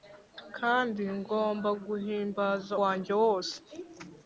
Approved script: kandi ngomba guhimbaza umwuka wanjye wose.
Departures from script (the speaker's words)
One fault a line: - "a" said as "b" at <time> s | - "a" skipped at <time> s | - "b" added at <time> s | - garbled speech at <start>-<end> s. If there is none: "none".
- "umwuka" skipped at 2.7 s